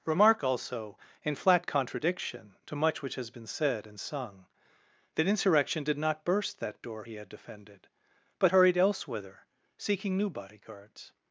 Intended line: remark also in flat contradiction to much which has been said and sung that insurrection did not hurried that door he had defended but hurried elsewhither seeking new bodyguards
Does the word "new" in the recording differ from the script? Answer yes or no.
no